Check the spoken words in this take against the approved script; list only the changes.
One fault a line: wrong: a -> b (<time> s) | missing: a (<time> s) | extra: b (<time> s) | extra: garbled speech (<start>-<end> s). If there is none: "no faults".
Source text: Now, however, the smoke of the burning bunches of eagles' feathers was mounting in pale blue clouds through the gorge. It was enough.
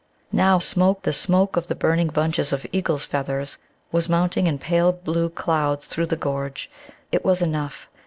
wrong: however -> smoke (0.6 s)